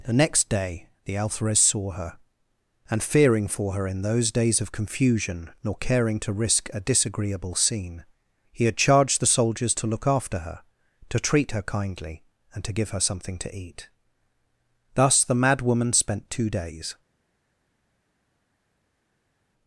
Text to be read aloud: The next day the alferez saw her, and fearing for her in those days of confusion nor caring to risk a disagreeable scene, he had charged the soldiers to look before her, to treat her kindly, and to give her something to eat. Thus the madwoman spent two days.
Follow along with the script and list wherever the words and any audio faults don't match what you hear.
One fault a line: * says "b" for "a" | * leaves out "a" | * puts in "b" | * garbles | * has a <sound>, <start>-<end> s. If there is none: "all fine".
* says "after" for "before"